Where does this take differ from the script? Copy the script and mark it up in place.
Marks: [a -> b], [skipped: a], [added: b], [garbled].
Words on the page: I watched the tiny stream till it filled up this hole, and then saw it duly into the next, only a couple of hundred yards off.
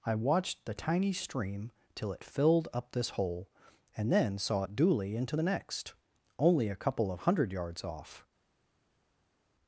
I watched the tiny stream till it filled up this hole, and then saw it duly into the next, only a couple of hundred yards off.